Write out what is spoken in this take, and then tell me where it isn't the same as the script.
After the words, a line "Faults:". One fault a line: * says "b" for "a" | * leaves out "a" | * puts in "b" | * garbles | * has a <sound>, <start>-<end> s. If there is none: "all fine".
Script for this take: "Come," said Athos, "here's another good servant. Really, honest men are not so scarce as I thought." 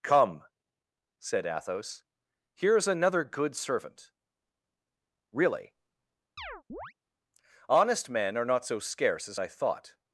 "Come," said Athos, "here's another good servant. Really, honest men are not so scarce as I thought."
Faults:
* has a chirp, 6.4-6.9 s